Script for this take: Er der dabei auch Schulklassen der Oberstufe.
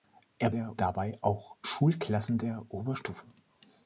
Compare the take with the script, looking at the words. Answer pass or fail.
pass